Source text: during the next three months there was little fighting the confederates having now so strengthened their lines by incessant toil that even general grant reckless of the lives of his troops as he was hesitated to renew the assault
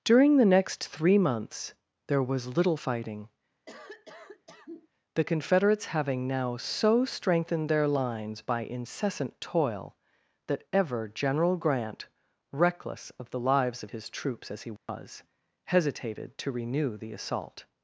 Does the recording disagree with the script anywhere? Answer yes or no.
yes